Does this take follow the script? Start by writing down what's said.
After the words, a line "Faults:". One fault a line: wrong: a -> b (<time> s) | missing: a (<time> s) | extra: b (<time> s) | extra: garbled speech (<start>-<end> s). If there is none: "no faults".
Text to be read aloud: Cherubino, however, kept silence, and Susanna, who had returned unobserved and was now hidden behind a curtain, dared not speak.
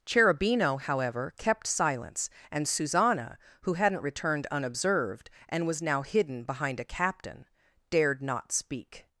Cherubino, however, kept silence, and Susanna, who hadn't returned unobserved and was now hidden behind a captain, dared not speak.
Faults:
wrong: had -> hadn't (3.7 s)
wrong: curtain -> captain (6.8 s)